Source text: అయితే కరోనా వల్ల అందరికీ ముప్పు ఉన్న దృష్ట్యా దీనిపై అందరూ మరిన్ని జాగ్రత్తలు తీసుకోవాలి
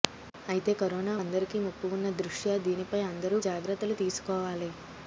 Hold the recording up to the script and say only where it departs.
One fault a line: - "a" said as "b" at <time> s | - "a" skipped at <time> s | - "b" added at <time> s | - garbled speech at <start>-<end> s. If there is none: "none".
- "వల్ల" skipped at 1.1 s
- "మరిన్ని" skipped at 3.4 s